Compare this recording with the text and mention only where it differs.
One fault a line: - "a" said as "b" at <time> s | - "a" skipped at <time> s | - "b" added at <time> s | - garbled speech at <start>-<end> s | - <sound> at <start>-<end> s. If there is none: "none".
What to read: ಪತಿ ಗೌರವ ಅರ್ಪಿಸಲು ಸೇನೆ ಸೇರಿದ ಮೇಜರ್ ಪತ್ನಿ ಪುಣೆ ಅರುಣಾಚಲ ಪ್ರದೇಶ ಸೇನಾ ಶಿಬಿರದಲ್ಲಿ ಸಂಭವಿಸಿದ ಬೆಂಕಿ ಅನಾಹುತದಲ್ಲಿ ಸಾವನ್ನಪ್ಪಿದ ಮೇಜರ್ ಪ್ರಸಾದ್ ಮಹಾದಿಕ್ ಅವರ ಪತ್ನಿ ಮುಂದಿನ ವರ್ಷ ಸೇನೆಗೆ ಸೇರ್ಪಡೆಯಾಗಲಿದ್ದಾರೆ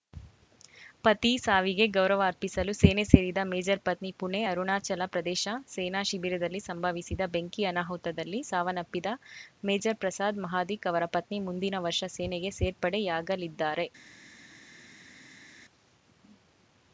- "ಸಾವಿಗೆ" added at 1.4 s